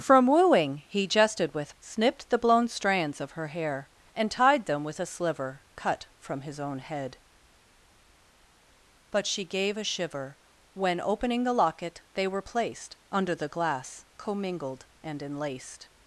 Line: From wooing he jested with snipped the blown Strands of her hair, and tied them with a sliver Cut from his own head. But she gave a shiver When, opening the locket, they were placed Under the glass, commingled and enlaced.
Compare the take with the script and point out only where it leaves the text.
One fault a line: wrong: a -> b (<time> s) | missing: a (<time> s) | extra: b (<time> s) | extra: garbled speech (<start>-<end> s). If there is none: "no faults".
no faults